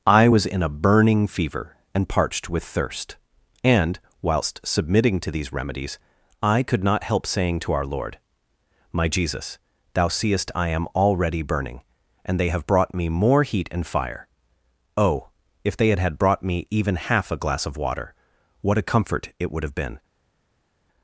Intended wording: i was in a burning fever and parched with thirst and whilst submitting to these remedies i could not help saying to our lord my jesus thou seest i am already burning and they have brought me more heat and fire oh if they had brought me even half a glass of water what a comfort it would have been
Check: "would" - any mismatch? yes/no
no